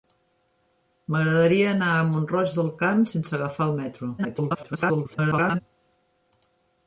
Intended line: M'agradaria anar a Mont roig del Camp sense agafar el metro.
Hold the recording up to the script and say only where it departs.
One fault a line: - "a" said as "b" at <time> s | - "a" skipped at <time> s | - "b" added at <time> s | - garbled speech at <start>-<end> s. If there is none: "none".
- garbled speech at 4.2-5.6 s